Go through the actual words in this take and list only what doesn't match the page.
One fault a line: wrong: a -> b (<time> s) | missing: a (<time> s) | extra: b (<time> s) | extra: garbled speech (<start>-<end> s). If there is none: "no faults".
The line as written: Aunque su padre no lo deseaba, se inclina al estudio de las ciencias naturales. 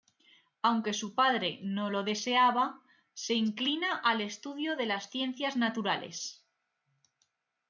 no faults